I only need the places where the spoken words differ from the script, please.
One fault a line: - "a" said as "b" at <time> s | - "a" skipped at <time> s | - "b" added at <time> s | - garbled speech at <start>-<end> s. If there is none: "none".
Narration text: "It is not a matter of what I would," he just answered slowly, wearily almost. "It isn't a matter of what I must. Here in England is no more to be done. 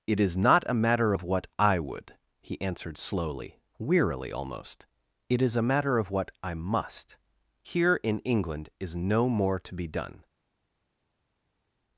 - "just" skipped at 2.6 s
- "isn't" said as "is" at 5.4 s